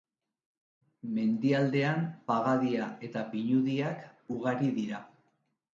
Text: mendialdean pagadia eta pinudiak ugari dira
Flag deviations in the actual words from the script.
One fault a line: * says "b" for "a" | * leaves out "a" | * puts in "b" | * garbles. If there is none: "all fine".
all fine